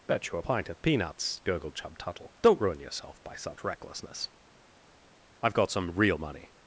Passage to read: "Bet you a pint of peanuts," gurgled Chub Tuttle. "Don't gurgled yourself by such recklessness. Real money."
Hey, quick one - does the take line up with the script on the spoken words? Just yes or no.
no